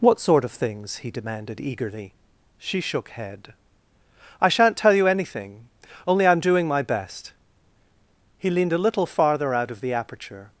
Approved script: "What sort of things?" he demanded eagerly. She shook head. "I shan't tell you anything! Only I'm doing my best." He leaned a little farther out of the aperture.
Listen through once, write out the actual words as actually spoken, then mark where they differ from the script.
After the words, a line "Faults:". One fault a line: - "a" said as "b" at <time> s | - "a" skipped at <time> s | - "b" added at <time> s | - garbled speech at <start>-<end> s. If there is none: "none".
"What sort of things?" he demanded eagerly. She shook head. "I shan't tell you anything! Only I'm doing my best." He leaned a little farther out of the aperture.
Faults:
none